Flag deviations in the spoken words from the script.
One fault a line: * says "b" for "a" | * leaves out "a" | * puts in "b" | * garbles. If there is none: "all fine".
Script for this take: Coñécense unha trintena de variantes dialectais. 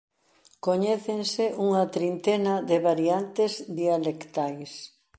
all fine